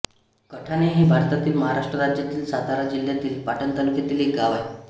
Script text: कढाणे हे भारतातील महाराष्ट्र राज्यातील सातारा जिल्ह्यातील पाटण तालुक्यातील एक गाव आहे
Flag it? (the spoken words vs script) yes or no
no